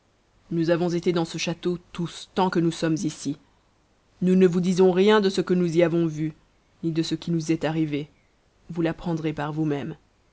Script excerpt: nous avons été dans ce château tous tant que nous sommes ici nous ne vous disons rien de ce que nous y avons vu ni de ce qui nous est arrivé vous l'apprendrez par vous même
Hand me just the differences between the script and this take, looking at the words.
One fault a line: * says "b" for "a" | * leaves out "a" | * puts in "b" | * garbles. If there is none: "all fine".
all fine